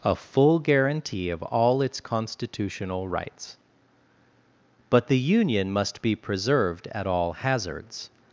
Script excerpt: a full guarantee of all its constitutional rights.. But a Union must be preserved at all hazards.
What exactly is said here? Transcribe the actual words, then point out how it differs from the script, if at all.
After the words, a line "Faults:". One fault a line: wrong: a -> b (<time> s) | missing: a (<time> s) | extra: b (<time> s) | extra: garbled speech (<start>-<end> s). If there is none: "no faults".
a full guarantee of all its constitutional rights.. But the Union must be preserved at all hazards.
Faults:
wrong: a -> the (5.1 s)